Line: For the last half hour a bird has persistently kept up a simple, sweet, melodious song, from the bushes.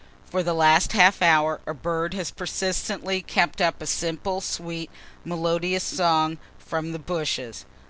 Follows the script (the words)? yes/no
yes